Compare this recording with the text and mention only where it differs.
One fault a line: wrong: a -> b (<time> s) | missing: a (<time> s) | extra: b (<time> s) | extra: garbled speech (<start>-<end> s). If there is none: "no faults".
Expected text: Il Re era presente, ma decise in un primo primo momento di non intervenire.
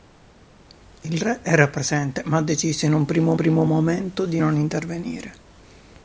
no faults